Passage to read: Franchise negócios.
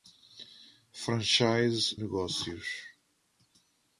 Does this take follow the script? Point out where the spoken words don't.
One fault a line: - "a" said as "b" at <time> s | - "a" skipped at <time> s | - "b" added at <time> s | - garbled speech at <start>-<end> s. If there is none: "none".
none